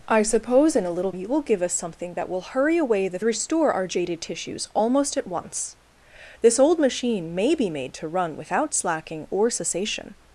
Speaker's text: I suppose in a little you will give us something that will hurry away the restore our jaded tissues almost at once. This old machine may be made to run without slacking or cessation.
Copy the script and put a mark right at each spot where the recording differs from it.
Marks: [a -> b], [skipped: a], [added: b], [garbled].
I suppose in a little you will give us something that will hurry away the restore our jaded tissues almost at once. This old machine may be made to run without slacking or cessation.